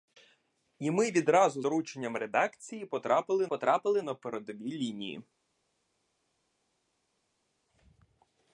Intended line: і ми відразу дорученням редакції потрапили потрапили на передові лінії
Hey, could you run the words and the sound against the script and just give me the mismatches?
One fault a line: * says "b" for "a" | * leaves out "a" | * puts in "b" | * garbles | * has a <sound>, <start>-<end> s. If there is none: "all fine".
all fine